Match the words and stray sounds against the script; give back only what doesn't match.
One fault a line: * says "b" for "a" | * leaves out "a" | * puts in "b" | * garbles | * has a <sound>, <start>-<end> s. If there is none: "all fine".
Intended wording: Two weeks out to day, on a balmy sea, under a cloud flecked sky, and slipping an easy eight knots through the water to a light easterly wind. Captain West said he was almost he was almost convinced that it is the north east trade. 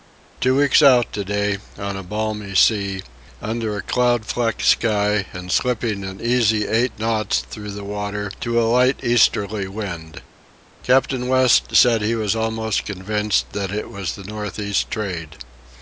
* leaves out "he was almost"
* says "was" for "is"